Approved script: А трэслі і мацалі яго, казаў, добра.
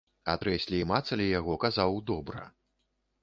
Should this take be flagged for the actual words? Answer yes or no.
no